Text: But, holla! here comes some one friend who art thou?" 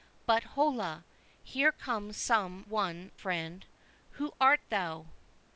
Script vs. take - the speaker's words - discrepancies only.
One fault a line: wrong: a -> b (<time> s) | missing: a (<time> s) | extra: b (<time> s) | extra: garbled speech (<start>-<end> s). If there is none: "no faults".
no faults